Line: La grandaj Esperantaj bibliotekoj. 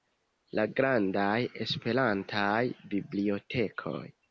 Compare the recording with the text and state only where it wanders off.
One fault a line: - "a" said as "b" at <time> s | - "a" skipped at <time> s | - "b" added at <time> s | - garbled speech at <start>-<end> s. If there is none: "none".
none